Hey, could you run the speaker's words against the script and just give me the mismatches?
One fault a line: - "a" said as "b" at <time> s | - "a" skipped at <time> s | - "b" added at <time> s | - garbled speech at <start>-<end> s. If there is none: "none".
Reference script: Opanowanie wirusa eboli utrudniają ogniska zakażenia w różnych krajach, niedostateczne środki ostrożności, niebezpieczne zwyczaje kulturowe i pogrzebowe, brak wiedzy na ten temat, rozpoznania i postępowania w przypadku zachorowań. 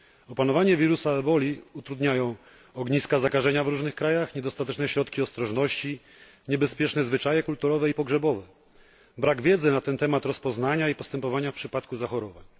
none